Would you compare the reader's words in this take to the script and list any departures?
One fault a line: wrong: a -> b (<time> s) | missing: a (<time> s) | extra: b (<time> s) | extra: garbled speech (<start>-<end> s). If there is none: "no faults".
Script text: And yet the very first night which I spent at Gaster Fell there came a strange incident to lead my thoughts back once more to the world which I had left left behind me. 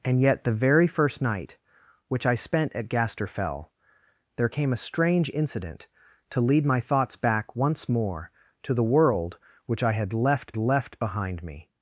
no faults